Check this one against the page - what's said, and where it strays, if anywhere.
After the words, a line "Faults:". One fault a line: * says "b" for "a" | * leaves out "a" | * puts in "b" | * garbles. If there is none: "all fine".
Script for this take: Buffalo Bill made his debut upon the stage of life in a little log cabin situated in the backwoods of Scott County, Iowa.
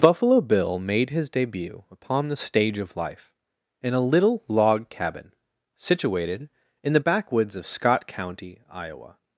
Buffalo Bill made his debut upon the stage of life in a little log cabin situated in the backwoods of Scott County, Iowa.
Faults:
all fine